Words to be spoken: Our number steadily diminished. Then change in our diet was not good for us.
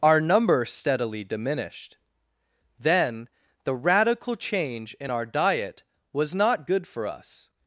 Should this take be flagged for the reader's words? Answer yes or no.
yes